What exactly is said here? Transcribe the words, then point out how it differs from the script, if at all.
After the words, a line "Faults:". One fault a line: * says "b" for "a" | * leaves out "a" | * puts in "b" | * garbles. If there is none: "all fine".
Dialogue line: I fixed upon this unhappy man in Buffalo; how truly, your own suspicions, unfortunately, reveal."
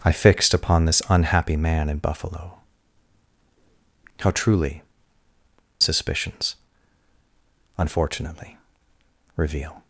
I fixed upon this unhappy man in Buffalo; how truly, suspicions, unfortunately, reveal."
Faults:
* leaves out "your own"